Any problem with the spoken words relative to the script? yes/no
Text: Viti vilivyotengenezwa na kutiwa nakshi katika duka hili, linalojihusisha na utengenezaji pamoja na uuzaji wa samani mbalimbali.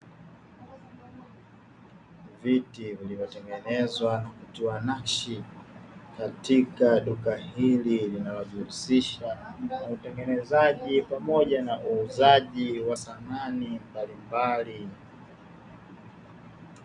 no